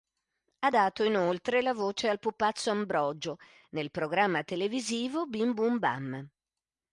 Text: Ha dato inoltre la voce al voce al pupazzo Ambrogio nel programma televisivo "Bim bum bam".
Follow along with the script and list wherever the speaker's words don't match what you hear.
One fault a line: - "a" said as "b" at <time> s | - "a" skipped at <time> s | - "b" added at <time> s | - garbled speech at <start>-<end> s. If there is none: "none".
- "voce al" skipped at 2.2 s